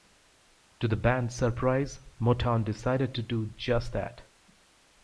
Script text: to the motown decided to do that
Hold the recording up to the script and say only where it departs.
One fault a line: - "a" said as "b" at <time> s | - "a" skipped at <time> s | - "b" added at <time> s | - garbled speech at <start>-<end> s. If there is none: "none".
- "band's surprise" added at 0.9 s
- "just" added at 3.5 s